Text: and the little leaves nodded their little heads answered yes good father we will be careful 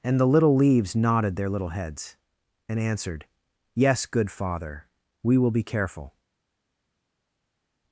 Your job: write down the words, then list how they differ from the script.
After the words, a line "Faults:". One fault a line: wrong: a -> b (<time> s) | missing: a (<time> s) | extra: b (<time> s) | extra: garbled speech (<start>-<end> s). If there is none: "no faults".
and the little leaves nodded their little heads and answered yes good father we will be careful
Faults:
extra: and (2.7 s)